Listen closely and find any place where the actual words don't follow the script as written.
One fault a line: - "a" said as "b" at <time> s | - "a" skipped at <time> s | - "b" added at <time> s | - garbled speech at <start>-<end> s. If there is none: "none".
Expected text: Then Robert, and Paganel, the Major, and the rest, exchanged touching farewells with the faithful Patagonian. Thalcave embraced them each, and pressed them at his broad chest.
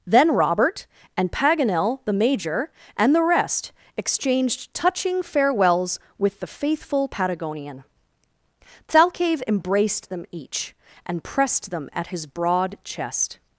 none